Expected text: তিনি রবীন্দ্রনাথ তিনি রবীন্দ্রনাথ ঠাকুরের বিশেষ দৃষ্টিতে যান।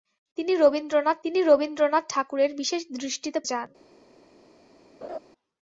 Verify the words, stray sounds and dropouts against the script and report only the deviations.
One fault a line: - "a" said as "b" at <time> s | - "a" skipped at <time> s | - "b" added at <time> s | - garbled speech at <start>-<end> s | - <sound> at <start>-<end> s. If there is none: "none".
- laugh at 5.0-5.2 s